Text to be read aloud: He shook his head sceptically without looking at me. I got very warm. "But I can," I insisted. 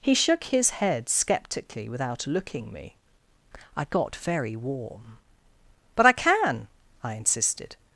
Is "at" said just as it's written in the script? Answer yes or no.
no